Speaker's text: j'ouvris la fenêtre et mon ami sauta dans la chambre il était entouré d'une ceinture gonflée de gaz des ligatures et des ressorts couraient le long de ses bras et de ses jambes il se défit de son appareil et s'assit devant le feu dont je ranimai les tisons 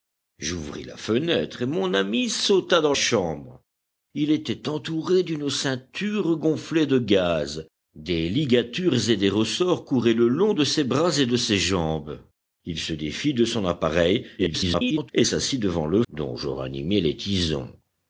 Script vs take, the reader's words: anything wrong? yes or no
yes